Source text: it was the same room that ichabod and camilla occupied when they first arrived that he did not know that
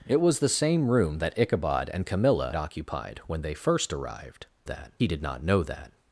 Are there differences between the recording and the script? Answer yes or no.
no